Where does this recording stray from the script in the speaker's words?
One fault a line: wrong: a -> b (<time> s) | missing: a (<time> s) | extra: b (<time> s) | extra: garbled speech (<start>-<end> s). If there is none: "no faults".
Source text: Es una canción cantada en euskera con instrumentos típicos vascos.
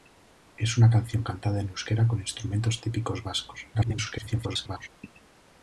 extra: garbled speech (3.7-4.9 s)